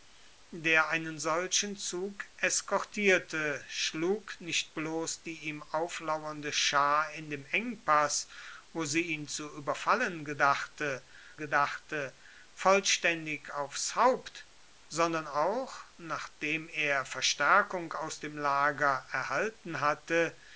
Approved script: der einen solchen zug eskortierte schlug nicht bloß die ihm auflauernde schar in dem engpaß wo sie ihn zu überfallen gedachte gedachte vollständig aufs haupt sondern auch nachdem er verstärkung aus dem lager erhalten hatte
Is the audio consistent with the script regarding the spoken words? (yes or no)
yes